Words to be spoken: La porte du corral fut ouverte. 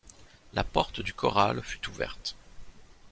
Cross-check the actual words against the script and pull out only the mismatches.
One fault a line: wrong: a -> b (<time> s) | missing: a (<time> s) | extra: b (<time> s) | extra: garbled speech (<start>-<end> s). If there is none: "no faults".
no faults